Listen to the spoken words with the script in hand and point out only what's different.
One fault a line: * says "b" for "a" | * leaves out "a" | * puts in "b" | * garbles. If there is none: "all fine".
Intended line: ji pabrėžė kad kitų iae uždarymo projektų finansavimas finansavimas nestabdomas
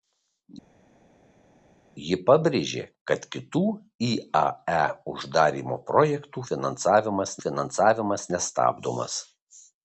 all fine